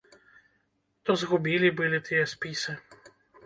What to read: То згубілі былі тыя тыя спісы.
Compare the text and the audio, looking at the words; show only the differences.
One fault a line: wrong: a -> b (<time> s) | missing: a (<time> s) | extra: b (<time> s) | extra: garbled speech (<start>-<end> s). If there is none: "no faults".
missing: тыя (2.2 s)